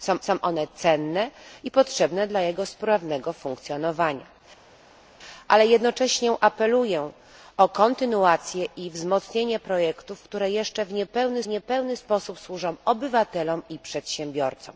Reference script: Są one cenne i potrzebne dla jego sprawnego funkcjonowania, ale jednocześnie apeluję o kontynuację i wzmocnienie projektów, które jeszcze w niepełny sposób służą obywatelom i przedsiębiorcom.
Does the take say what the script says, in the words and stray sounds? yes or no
no